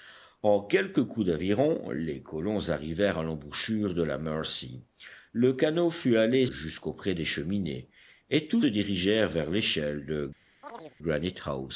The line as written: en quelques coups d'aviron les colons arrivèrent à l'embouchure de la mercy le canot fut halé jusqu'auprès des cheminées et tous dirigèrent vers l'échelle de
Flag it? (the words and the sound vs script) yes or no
yes